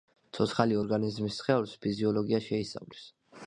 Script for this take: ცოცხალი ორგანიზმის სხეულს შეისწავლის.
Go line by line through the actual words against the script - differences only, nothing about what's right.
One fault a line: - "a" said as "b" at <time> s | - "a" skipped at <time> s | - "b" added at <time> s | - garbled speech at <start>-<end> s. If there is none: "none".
- "ფიზიოლოგია" added at 1.9 s